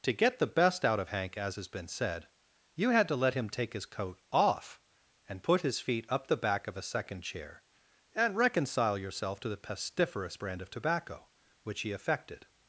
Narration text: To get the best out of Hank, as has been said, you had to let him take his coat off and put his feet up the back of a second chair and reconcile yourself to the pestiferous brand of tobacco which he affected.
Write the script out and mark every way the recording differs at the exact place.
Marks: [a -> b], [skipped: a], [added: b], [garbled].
To get the best out of Hank, as has been said, you had to let him take his coat off and put his feet up the back of a second chair and reconcile yourself to the pestiferous brand of tobacco which he affected.